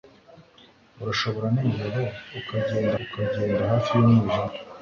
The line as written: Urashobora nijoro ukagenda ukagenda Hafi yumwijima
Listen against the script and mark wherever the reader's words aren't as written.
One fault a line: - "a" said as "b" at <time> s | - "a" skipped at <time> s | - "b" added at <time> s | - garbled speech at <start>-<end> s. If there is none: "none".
none